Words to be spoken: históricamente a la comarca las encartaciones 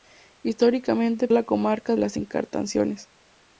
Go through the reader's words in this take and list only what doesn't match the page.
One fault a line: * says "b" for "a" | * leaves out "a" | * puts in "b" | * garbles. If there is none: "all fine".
all fine